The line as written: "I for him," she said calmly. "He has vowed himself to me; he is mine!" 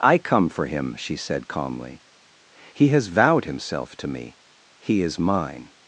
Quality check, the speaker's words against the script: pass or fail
fail